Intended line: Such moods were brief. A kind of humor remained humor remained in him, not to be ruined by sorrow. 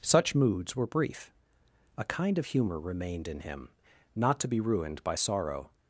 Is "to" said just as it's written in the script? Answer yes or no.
yes